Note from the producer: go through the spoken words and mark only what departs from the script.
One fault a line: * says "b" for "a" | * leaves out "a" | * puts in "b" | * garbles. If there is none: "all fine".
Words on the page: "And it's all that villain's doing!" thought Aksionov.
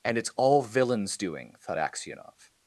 * leaves out "that"